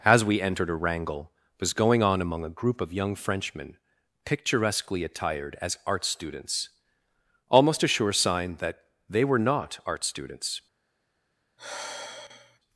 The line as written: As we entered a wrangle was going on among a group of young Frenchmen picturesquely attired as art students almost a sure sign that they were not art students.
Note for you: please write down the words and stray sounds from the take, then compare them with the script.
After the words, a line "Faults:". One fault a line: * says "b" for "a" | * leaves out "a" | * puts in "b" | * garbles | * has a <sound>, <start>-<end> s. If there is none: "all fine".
As we entered a wrangle was going on among a group of young Frenchmen picturesquely attired as art students almost a sure sign that they were not art students.
Faults:
* has a sigh, 11.6-12.6 s